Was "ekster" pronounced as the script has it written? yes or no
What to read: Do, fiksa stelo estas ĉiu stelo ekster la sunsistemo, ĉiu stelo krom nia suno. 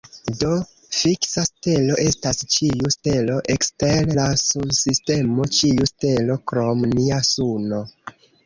yes